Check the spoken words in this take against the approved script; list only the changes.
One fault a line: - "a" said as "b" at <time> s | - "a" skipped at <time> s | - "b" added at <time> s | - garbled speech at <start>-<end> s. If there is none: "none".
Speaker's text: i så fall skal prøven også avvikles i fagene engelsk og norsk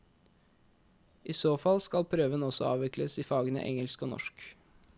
none